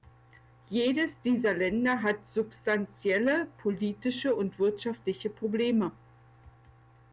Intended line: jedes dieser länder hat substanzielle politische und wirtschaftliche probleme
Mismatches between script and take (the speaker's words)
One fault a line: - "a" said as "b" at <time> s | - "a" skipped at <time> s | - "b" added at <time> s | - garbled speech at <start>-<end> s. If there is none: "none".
none